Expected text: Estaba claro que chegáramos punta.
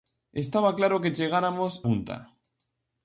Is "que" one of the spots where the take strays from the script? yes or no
no